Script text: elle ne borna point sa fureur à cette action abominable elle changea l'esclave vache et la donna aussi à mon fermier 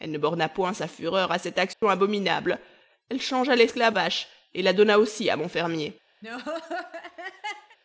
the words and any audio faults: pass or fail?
fail